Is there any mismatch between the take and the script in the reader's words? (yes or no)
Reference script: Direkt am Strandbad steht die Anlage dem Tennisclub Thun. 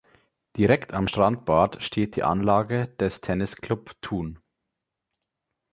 yes